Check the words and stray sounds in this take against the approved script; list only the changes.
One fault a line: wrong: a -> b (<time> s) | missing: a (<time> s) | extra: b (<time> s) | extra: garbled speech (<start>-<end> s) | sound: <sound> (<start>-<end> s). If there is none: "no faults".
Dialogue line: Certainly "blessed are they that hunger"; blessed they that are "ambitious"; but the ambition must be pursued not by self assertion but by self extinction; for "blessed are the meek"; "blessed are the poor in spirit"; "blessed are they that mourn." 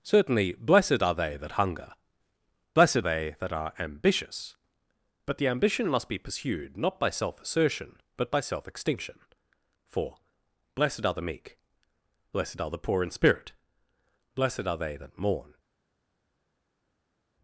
no faults